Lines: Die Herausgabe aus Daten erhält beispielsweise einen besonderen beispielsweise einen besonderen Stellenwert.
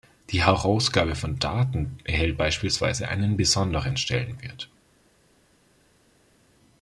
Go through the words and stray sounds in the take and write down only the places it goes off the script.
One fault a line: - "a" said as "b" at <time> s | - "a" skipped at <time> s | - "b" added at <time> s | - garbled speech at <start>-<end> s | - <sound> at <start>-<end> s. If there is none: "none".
- "aus" said as "von" at 1.1 s
- "beispielsweise einen besonderen" skipped at 4.0 s